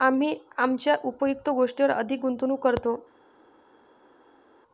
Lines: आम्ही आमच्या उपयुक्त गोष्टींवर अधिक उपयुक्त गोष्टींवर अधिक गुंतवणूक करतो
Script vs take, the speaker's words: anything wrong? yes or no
yes